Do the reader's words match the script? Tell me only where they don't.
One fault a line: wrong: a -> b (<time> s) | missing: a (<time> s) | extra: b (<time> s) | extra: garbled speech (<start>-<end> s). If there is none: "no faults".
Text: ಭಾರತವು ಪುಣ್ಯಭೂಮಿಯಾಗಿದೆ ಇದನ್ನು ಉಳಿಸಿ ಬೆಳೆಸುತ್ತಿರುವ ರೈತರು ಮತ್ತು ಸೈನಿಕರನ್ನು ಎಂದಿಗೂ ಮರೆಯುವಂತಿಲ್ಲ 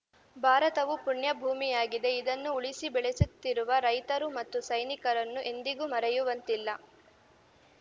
no faults